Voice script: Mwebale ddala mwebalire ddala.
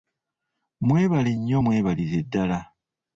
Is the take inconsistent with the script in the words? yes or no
yes